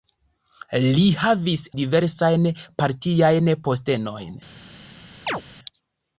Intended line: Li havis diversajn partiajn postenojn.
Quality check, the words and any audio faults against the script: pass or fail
fail